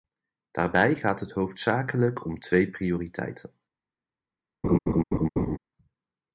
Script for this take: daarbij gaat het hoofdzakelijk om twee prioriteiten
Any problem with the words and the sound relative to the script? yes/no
yes